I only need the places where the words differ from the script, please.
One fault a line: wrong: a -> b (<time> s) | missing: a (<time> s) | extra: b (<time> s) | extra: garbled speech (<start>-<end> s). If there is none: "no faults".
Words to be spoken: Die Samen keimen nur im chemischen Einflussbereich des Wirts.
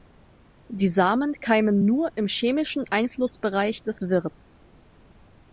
no faults